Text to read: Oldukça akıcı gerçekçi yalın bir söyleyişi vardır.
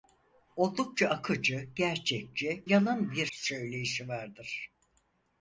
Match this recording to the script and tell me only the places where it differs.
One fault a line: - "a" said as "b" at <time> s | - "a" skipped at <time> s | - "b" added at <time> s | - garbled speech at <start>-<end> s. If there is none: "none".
none